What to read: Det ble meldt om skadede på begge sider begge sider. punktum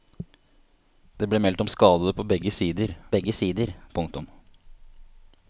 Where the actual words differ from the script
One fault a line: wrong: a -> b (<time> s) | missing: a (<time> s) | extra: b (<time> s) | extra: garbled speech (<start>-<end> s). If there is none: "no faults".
no faults